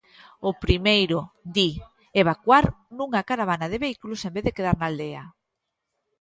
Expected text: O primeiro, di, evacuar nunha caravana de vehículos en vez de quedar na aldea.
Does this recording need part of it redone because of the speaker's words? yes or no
no